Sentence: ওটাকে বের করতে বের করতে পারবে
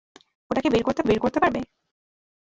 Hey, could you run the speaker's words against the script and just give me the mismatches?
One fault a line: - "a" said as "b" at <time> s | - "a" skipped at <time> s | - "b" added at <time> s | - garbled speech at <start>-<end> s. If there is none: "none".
none